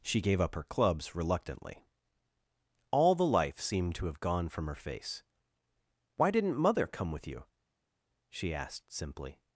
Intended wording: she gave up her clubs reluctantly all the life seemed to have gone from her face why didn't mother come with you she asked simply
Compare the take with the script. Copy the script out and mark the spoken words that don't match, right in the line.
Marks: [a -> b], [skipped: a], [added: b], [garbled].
she gave up her clubs reluctantly all the life seemed to have gone from her face why didn't mother come with you she asked simply